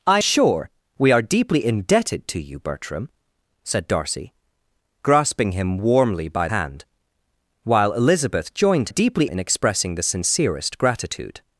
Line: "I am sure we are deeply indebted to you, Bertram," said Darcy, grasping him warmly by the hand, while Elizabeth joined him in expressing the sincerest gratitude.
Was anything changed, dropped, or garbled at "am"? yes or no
yes